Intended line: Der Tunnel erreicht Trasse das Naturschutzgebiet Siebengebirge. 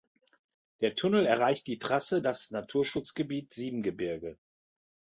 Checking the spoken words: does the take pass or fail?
fail